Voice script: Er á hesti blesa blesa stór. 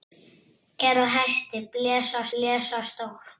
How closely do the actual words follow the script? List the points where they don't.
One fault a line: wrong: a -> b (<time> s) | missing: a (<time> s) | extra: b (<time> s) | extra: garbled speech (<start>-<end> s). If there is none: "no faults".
no faults